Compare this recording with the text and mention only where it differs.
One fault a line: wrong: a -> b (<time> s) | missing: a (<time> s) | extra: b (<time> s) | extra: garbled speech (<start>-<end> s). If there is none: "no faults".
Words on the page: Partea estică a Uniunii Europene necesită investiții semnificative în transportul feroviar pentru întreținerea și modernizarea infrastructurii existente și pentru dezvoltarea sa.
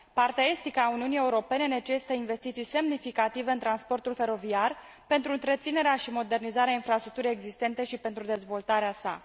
no faults